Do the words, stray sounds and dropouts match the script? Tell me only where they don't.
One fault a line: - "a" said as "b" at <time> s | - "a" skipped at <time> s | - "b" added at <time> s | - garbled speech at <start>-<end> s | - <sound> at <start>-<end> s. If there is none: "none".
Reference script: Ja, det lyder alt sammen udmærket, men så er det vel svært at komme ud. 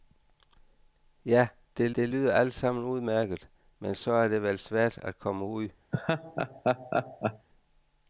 - "det" added at 2.0 s
- laugh at 5.9-7.5 s